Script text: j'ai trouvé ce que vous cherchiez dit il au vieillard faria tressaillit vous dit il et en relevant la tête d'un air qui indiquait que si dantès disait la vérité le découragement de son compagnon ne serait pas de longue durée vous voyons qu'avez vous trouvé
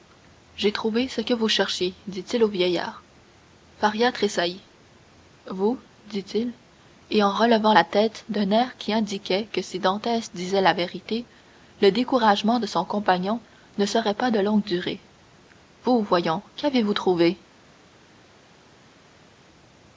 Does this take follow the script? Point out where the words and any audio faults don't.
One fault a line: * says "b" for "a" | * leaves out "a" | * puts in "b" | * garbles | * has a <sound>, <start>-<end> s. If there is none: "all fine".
all fine